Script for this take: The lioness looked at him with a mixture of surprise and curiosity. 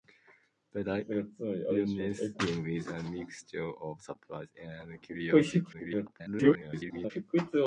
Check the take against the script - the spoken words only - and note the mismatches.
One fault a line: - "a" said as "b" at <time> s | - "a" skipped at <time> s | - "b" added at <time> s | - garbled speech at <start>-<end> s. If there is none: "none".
- "looked at" skipped at 2.4 s
- garbled speech at 5.7-7.1 s